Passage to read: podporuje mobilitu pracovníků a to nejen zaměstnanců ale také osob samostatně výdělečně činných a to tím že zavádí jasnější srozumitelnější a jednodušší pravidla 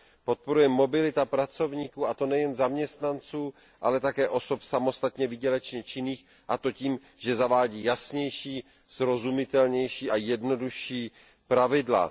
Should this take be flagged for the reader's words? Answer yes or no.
no